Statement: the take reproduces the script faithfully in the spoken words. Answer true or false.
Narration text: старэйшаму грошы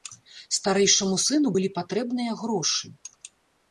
false